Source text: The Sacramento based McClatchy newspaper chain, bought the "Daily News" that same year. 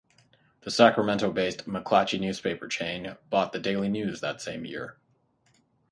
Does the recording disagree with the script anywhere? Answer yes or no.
no